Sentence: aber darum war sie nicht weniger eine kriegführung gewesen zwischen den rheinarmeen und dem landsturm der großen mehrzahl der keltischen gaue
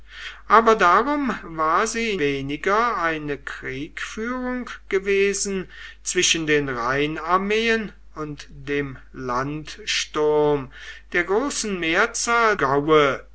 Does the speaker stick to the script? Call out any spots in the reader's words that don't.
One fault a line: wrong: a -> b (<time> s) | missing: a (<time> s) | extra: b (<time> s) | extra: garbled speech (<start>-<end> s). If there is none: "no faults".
missing: nicht (2.2 s)
missing: der keltischen (12.5 s)